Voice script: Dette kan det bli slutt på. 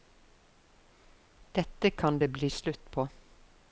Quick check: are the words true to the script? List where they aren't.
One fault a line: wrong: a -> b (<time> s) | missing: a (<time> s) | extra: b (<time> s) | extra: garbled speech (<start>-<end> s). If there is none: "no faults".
no faults